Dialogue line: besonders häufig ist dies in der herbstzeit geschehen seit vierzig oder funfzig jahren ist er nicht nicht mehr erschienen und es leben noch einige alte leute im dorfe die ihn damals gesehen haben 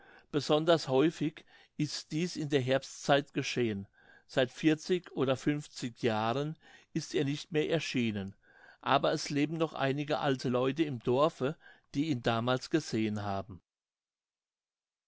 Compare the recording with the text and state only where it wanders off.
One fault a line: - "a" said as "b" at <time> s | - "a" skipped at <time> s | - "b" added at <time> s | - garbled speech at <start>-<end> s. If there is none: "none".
- "nicht" skipped at 7.5 s
- "und" said as "aber" at 8.8 s